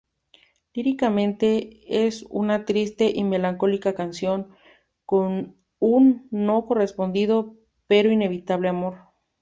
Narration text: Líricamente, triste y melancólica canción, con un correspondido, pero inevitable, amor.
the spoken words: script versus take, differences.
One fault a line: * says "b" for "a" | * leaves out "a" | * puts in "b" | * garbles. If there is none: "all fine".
* puts in "es una"
* puts in "no"